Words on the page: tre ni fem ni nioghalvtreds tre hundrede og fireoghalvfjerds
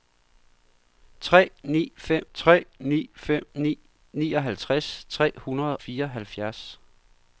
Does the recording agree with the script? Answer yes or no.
no